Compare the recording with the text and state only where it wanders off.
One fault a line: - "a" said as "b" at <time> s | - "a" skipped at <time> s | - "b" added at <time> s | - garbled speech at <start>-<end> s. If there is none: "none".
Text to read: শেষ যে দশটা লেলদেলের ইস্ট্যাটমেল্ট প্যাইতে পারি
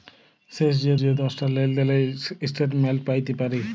- "যে" added at 1.0 s